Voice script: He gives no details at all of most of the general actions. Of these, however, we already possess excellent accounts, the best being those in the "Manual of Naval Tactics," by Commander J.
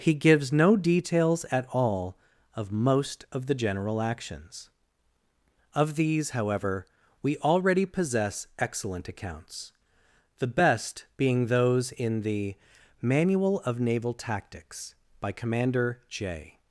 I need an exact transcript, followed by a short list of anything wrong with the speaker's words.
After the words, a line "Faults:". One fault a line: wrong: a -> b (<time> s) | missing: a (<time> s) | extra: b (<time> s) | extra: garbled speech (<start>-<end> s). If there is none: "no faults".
He gives no details at all of most of the general actions. Of these, however, we already possess excellent accounts, the best being those in the "Manual of Naval Tactics," by Commander J.
Faults:
no faults